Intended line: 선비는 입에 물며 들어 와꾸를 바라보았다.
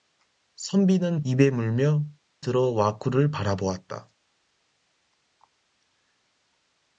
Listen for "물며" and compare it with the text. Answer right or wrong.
right